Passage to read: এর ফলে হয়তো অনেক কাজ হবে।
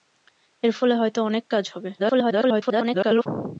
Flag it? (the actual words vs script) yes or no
yes